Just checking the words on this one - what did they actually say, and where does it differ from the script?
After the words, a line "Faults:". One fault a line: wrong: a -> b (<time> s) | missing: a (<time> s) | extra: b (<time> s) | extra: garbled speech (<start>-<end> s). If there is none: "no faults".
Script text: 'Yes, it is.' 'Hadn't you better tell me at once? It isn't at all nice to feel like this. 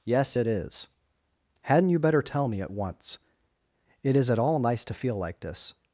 'Yes, it is.' 'Hadn't you better tell me at once? It is at all nice to feel like this.
Faults:
wrong: isn't -> is (4.2 s)